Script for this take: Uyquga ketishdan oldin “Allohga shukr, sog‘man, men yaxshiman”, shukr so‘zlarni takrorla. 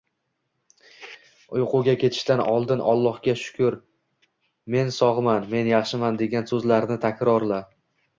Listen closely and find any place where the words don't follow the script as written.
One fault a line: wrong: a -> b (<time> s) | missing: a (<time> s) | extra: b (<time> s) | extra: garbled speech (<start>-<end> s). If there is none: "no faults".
extra: men (4.8 s)
wrong: shukr -> degan (6.2 s)